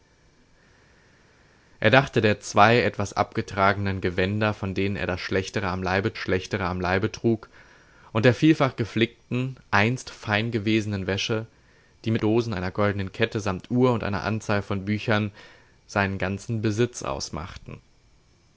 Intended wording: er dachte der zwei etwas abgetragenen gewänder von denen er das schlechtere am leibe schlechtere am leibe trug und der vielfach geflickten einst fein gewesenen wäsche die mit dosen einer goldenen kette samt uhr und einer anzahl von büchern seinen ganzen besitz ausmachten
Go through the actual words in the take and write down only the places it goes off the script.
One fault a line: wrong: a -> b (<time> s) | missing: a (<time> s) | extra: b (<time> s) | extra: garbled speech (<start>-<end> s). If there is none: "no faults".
no faults